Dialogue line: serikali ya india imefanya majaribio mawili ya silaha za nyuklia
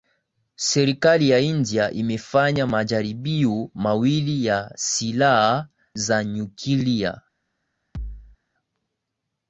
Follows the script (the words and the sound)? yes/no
no